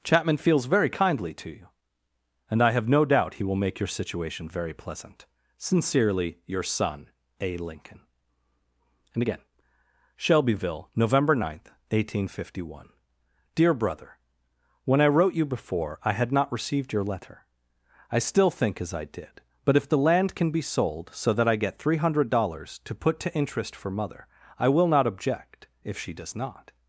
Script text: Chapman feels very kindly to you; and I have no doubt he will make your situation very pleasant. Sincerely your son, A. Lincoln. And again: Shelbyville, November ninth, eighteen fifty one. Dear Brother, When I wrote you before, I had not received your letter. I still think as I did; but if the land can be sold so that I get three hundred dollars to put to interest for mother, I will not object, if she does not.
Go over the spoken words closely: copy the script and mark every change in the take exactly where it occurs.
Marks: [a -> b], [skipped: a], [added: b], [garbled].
Chapman feels very kindly to you; and I have no doubt he will make your situation very pleasant. Sincerely your son, A. Lincoln. And again: Shelbyville, November ninth, eighteen fifty one. Dear Brother, When I wrote you before, I had not received your letter. I still think as I did; but if the land can be sold so that I get three hundred dollars to put to interest for mother, I will not object, if she does not.